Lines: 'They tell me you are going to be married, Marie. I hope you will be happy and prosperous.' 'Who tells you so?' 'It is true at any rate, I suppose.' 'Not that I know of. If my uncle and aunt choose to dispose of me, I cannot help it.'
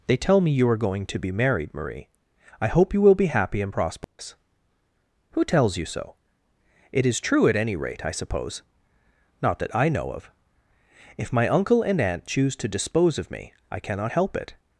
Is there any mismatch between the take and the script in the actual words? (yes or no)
no